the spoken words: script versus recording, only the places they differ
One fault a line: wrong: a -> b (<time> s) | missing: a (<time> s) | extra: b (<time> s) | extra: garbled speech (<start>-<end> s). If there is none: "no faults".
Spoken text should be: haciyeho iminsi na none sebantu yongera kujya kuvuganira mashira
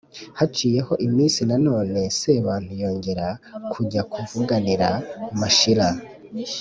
no faults